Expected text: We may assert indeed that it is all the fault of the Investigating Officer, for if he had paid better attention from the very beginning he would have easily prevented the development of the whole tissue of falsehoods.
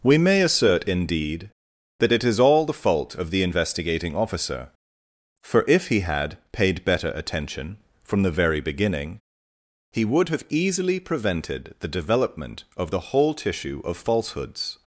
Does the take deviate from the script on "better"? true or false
false